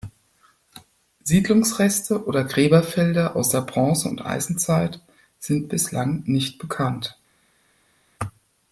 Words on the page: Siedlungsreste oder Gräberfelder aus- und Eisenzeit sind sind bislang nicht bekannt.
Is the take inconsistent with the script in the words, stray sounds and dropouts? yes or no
yes